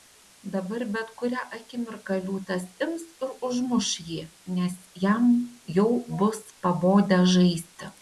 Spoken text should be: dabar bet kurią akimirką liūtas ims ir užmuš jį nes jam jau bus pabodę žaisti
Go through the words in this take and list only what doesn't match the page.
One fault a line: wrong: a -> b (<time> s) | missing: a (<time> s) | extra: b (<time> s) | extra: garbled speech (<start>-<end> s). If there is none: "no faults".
no faults